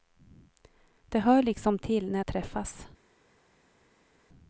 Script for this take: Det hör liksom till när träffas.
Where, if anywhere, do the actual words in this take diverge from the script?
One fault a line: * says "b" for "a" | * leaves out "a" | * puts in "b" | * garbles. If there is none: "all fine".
all fine